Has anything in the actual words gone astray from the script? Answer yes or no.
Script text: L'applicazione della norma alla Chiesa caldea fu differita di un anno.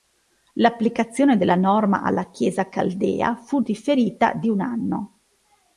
no